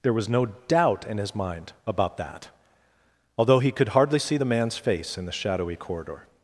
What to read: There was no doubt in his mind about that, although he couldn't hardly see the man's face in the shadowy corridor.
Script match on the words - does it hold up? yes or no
no